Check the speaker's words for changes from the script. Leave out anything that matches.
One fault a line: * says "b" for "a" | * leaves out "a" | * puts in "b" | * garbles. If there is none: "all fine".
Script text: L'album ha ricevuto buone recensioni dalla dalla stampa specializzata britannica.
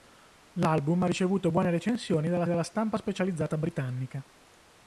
all fine